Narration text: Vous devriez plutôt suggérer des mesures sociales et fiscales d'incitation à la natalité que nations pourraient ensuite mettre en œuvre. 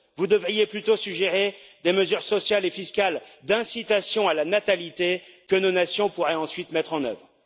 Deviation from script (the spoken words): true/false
true